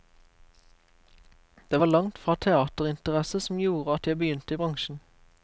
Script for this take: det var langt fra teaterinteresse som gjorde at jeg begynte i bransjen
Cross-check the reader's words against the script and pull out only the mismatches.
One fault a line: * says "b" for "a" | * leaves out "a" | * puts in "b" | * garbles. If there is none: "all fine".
all fine